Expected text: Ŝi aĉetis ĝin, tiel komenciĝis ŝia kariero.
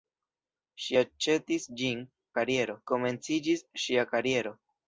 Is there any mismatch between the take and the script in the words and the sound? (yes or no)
yes